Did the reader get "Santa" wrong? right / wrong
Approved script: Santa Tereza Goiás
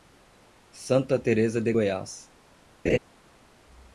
right